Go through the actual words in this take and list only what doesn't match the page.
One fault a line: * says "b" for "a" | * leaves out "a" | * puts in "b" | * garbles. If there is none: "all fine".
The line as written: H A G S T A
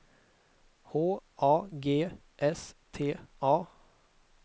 all fine